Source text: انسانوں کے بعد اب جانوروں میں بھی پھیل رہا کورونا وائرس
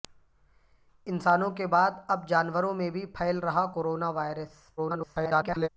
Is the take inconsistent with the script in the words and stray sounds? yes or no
yes